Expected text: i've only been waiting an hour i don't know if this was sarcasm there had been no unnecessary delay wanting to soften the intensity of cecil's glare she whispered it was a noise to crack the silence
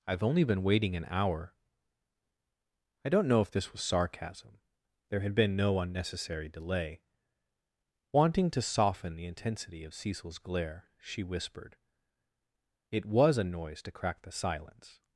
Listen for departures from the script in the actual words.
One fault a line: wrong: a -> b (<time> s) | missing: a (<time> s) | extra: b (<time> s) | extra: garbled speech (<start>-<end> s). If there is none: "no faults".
no faults